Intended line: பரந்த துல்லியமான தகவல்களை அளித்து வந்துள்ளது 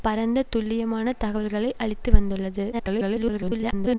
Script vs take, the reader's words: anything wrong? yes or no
yes